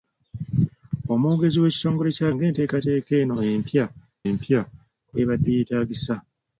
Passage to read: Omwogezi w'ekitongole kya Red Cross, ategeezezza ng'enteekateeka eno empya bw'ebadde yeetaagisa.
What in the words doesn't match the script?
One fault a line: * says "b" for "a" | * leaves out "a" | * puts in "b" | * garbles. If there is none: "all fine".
* leaves out "Red Cross ategeezezza"
* puts in "empya"